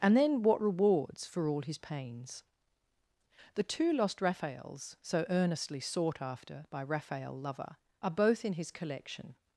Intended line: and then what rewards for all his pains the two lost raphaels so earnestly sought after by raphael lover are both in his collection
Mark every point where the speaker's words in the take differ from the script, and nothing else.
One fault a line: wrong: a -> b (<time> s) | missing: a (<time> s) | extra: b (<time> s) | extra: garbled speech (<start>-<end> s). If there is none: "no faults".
no faults